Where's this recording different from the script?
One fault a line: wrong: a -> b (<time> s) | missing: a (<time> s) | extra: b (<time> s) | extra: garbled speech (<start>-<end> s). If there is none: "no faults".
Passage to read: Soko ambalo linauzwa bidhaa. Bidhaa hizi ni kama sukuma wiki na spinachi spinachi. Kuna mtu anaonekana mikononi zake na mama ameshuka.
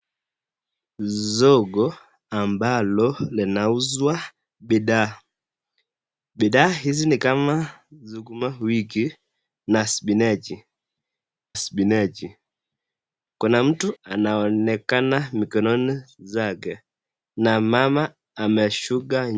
no faults